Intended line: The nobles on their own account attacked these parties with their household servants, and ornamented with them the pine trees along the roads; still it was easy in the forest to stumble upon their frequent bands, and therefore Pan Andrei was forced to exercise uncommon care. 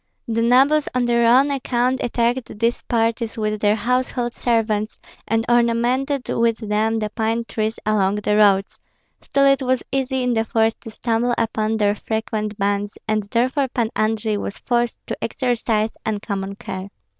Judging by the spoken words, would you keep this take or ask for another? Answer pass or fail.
pass